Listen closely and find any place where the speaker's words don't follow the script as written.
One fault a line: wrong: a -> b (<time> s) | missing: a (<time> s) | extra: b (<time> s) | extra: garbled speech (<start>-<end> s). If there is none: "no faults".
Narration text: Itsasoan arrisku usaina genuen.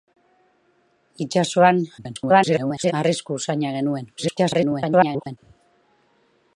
extra: garbled speech (2.0-2.9 s)
extra: garbled speech (4.2-5.4 s)